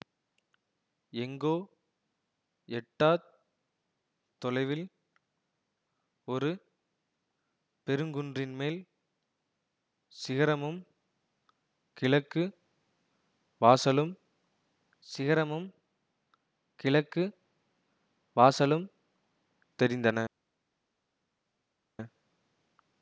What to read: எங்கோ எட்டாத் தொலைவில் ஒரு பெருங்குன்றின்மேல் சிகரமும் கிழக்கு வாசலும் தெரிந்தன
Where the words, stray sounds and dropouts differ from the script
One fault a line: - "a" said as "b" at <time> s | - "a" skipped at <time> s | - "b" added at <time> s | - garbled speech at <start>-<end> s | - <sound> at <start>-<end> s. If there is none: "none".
- "சிகரமும் கிழக்கு வாசலும்" added at 15.1 s